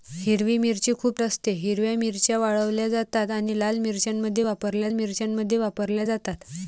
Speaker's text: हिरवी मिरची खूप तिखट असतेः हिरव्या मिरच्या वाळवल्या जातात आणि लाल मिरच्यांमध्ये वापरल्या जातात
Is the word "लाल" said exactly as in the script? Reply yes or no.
yes